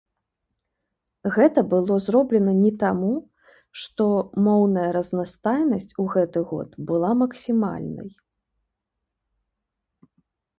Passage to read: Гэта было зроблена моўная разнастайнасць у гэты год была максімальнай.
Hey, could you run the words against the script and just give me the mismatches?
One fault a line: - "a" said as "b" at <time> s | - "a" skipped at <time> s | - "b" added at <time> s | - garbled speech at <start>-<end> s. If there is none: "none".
- "не таму што" added at 2.6 s